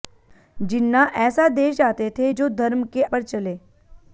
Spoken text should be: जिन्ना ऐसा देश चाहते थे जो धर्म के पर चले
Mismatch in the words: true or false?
false